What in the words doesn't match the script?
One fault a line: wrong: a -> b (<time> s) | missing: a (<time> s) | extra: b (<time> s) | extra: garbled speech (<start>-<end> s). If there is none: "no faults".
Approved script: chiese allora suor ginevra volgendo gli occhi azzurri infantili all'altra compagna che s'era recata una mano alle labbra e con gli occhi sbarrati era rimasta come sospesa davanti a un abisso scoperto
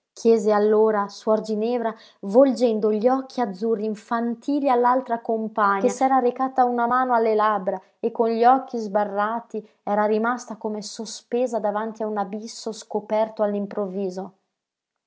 no faults